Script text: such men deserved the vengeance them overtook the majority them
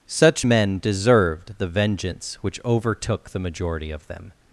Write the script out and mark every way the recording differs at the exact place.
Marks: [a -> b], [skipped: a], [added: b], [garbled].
such men deserved the vengeance [them -> which] overtook the majority [added: of] them